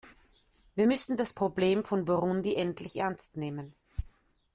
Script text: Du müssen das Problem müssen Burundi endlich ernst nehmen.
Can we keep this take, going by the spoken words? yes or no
no